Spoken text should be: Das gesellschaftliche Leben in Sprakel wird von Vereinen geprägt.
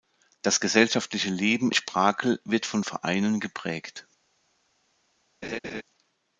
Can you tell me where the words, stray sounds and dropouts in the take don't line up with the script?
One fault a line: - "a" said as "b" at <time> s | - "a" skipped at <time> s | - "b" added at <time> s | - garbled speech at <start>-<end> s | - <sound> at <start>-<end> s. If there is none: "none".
- "in" skipped at 1.7 s
- laugh at 5.4-5.8 s